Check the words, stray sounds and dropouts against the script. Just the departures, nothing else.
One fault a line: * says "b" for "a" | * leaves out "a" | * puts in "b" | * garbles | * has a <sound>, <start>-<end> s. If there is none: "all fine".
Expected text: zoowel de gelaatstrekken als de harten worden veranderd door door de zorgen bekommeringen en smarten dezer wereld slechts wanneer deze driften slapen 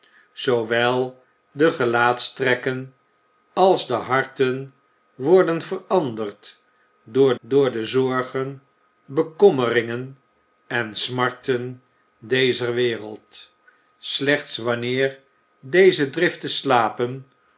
all fine